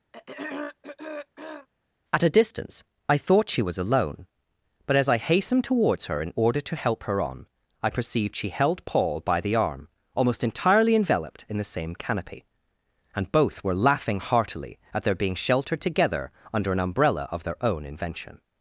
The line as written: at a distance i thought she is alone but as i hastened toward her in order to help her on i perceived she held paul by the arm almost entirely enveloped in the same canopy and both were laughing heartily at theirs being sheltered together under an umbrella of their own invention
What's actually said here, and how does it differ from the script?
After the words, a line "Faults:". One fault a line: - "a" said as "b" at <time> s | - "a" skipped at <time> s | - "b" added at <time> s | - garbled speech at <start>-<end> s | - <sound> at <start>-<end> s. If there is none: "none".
at a distance i thought she was alone but as i hastened towards her in order to help her on i perceived she held paul by the arm almost entirely enveloped in the same canopy and both were laughing heartily at their being sheltered together under an umbrella of their own invention
Faults:
- throat clearing at 0.1-1.7 s
- "is" said as "was" at 3.6 s
- "toward" said as "towards" at 5.6 s
- "theirs" said as "their" at 15.0 s